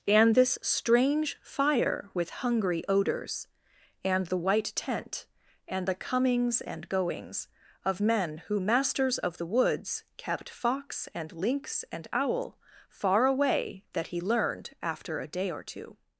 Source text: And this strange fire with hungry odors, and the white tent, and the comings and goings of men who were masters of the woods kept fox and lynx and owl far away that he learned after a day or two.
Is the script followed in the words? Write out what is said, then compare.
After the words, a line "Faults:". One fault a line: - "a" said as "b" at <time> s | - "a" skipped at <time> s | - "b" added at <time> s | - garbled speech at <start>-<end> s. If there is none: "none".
And this strange fire with hungry odors, and the white tent, and the comings and goings of men who masters of the woods kept fox and lynx and owl far away that he learned after a day or two.
Faults:
- "were" skipped at 8.6 s